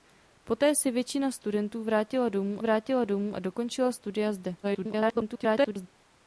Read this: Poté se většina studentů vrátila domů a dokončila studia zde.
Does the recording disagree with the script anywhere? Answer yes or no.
yes